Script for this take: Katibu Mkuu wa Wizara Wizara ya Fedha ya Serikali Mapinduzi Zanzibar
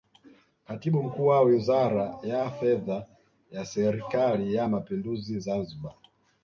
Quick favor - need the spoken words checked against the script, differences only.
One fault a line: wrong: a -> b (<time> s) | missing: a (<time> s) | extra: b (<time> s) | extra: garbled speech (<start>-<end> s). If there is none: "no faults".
missing: Wizara (2.2 s)
extra: ya (4.5 s)